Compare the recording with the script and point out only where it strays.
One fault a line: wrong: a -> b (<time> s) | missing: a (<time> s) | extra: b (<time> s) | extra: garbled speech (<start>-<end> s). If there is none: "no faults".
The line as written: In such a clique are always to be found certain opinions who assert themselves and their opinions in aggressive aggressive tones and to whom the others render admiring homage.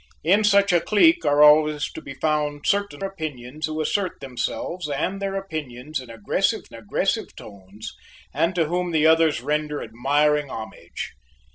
no faults